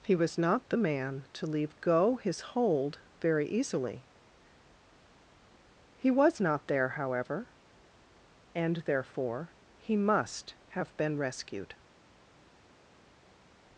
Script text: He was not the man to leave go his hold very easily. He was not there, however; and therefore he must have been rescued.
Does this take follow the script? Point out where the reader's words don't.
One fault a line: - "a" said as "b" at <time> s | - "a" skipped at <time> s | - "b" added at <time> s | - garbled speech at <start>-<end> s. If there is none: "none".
none